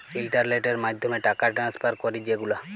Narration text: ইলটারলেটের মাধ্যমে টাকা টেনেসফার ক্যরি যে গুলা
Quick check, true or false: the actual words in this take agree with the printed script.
true